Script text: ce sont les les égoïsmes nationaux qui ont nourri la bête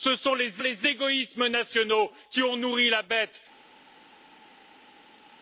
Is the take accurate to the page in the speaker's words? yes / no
yes